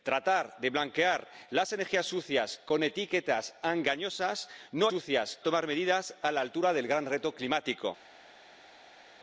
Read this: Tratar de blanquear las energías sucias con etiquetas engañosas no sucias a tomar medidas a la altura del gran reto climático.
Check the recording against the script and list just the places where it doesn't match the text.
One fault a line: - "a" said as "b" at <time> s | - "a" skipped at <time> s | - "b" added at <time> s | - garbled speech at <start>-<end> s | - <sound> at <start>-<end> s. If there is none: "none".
none